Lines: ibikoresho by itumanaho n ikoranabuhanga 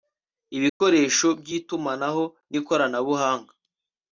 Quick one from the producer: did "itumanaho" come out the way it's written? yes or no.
yes